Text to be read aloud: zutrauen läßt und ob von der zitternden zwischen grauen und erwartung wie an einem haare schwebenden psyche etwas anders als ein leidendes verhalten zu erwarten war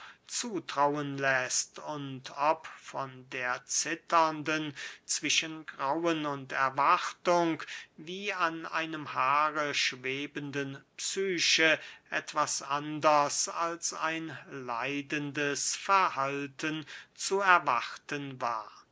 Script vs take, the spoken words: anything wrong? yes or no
no